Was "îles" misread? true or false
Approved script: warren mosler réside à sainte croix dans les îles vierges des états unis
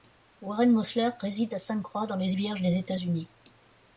true